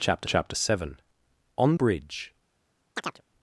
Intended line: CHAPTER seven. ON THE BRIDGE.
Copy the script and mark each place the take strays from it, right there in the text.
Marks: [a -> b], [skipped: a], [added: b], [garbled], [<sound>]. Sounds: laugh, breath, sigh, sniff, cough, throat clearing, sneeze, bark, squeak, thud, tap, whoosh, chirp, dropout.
CHAPTER [added: chapter] seven. ON [skipped: THE] BRIDGE. [chirp]